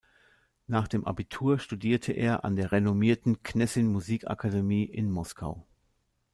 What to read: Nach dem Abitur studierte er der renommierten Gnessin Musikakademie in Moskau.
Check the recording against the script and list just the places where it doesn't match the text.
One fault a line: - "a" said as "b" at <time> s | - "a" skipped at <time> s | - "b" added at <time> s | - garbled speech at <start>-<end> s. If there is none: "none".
- "an" added at 2.4 s